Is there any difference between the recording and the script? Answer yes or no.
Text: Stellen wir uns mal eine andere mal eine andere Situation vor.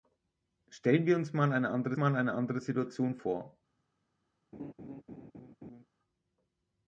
no